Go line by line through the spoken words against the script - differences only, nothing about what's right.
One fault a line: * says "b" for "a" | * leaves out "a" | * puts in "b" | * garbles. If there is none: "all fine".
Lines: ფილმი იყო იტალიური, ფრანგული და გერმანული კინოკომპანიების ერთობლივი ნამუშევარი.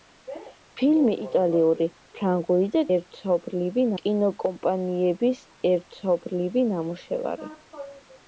* leaves out "იყო"
* says "ერთობლივი" for "გერმანული"